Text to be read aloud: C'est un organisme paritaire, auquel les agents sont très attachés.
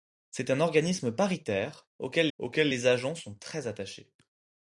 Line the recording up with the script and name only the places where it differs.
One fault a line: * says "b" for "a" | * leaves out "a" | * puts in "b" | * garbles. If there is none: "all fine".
* puts in "auquel"